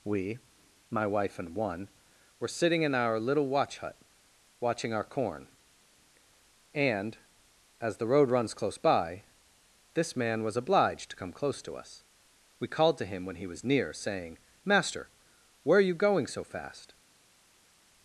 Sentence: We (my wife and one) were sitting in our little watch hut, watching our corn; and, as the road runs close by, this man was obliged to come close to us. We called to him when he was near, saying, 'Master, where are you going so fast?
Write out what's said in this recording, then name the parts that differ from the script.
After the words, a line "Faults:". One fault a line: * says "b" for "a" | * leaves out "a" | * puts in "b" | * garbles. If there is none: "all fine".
We (my wife and one) were sitting in our little watch hut, watching our corn; and, as the road runs close by, this man was obliged to come close to us. We called to him when he was near, saying, 'Master, where are you going so fast?
Faults:
all fine